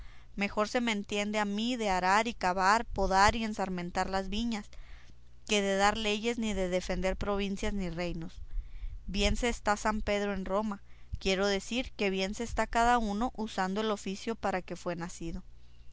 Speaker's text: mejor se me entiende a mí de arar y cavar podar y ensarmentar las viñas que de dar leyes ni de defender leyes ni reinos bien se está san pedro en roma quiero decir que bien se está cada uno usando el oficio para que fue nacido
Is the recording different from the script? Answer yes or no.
yes